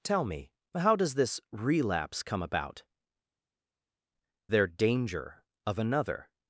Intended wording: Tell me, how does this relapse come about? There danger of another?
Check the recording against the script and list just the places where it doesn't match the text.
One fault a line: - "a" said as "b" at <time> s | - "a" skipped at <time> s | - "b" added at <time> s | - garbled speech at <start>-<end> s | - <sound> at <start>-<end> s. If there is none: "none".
none